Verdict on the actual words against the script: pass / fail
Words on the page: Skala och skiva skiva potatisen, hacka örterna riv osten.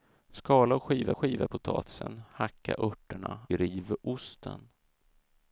pass